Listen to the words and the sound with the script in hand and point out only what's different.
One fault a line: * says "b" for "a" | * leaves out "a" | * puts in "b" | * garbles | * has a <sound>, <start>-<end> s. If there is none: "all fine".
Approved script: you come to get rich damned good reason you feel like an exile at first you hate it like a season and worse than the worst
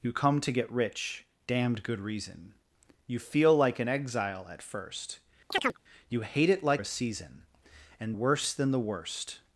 * has a chirp, 5.5-5.8 s